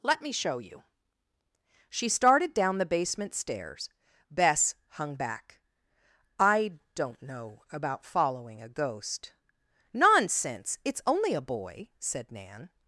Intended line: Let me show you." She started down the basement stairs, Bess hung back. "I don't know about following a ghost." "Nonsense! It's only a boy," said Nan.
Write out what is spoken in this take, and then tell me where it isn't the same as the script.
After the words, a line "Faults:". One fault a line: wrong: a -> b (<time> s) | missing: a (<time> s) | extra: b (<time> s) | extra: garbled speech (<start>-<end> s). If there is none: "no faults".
Let me show you." She started down the basement stairs, Bess hung back. "I don't know about following a ghost." "Nonsense! It's only a boy," said Nan.
Faults:
no faults